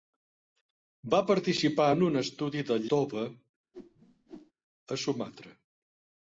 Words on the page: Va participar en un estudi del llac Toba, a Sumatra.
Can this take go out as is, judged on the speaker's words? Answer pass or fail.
fail